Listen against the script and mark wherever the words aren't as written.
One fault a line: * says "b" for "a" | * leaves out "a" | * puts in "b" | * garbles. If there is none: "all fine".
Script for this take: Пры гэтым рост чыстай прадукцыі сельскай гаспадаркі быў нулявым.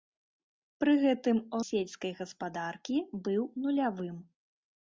* leaves out "рост чыстай прадукцыі"